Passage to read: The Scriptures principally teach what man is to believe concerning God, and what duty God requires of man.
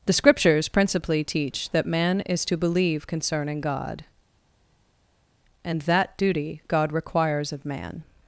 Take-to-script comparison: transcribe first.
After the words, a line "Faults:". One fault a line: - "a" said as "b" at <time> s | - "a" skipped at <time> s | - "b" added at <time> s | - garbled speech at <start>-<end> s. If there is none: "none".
The Scriptures principally teach that man is to believe concerning God, and that duty God requires of man.
Faults:
- "what" said as "that" at 1.7 s
- "what" said as "that" at 5.8 s